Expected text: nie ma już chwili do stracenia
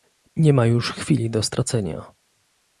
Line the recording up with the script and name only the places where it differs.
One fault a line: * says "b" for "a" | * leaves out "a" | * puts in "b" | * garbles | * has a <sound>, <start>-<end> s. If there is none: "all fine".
all fine